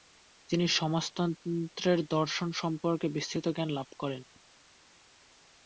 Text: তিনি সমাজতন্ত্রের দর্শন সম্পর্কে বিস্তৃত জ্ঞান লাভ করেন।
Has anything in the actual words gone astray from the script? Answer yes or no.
no